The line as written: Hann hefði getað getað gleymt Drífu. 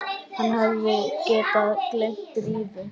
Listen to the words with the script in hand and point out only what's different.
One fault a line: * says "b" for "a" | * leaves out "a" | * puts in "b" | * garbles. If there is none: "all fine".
* leaves out "getað"